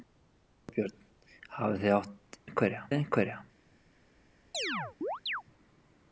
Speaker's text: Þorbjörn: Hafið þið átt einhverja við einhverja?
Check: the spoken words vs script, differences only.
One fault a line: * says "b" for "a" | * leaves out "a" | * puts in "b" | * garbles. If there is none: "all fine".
all fine